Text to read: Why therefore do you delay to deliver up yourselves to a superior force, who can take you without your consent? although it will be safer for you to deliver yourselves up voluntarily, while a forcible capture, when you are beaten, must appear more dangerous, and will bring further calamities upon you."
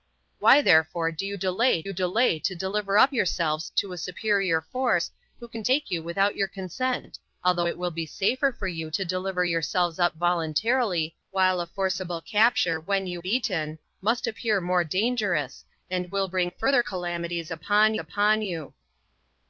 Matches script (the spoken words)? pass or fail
fail